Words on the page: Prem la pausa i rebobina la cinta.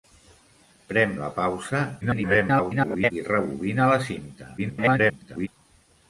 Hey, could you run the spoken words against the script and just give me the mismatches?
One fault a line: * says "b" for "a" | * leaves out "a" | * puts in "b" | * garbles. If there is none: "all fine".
* garbles
* garbles